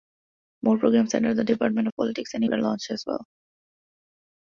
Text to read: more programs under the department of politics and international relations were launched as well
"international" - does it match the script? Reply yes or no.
no